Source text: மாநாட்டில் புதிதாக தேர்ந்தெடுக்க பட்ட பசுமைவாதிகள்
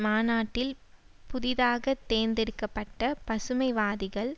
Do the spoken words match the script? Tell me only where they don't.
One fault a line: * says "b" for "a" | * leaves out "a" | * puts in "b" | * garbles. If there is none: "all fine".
all fine